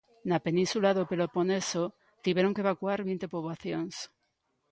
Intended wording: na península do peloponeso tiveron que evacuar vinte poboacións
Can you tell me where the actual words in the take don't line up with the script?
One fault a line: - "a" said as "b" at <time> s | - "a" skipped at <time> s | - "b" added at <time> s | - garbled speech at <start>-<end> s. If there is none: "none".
none